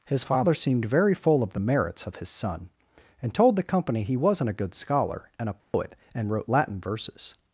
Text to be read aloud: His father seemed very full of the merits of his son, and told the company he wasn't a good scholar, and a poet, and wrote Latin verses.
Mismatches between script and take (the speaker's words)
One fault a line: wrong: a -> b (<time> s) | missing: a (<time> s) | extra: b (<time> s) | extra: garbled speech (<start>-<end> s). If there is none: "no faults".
no faults